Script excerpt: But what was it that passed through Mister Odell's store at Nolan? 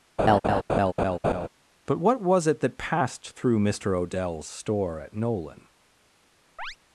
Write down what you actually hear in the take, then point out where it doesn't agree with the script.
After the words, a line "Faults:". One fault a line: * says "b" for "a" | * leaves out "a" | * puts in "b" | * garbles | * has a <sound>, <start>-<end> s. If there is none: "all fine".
But what was it that passed through Mister Odell's store at Nolan?
Faults:
* has a laugh, 0.2-1.5 s
* has a chirp, 6.6-6.8 s